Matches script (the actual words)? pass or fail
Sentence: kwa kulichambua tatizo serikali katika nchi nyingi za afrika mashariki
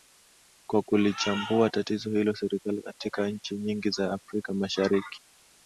fail